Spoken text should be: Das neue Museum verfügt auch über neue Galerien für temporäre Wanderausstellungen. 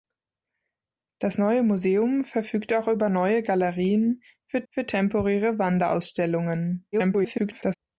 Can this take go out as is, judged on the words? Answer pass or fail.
fail